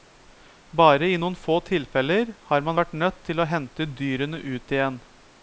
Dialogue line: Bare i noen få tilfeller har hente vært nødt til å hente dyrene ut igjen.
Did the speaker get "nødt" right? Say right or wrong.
right